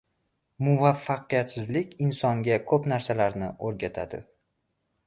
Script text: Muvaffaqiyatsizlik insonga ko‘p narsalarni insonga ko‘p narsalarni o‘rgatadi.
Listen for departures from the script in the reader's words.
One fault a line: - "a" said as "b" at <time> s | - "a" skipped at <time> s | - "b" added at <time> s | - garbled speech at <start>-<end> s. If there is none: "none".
- "insonga ko‘p narsalarni" skipped at 3.5 s